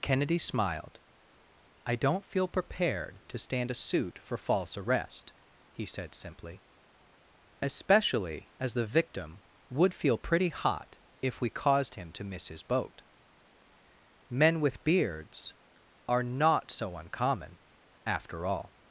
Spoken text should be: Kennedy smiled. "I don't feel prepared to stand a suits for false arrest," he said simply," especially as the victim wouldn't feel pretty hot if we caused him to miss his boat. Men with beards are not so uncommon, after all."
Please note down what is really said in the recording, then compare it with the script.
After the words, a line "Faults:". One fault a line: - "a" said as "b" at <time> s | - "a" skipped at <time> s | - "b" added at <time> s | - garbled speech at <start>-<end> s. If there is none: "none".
Kennedy smiled. "I don't feel prepared to stand a suit for false arrest," he said simply," especially as the victim would feel pretty hot if we caused him to miss his boat. Men with beards are not so uncommon, after all."
Faults:
- "suits" said as "suit" at 3.8 s
- "wouldn't" said as "would" at 9.7 s